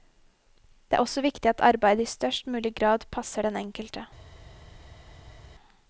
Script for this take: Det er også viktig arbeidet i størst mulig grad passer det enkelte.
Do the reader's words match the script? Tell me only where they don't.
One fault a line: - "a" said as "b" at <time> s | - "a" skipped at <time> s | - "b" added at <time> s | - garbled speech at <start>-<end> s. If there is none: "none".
- "at" added at 1.5 s
- "det" said as "den" at 3.4 s